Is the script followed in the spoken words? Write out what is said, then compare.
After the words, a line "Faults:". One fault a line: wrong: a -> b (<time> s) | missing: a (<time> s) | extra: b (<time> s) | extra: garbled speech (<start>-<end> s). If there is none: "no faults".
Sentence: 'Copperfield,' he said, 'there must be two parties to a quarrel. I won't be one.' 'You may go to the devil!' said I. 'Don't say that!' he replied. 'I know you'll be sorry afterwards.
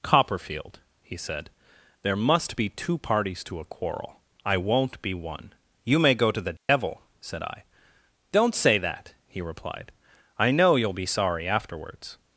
'Copperfield,' he said, 'there must be two parties to a quarrel. I won't be one.' 'You may go to the devil!' said I. 'Don't say that!' he replied. 'I know you'll be sorry afterwards.
Faults:
no faults